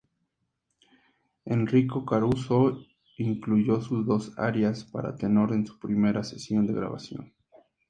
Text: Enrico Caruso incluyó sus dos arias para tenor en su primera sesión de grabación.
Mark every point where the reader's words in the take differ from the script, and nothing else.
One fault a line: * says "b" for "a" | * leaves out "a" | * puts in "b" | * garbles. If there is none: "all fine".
all fine